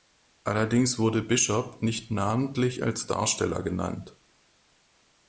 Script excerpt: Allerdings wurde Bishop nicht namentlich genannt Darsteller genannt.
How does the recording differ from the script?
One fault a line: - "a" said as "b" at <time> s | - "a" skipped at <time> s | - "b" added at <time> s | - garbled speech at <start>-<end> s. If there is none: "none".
- "genannt" said as "als" at 2.8 s